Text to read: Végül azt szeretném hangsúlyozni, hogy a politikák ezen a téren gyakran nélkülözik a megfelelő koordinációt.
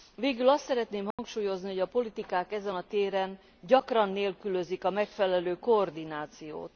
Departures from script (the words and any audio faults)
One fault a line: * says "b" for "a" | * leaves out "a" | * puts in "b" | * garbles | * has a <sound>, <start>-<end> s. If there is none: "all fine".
* has a dropout, 1.1-1.2 s